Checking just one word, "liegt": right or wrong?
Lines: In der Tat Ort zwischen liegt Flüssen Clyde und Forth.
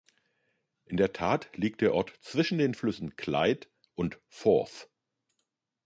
wrong